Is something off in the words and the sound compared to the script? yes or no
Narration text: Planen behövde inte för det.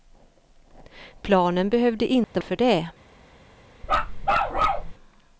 yes